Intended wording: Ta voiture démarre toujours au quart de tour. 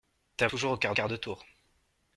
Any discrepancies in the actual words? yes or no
yes